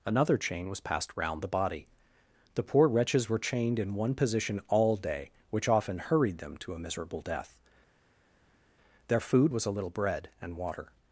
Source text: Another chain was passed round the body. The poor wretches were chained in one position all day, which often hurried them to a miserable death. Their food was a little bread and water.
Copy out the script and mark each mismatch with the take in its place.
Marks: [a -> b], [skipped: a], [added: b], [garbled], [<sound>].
Another chain was passed round the body. The poor wretches were chained in one position all day, which often hurried them to a miserable death. Their food was a little bread and water.